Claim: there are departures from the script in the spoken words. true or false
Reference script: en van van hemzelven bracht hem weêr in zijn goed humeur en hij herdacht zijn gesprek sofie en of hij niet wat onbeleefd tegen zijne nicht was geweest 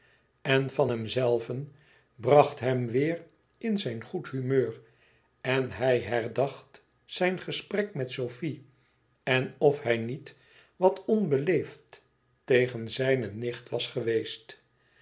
true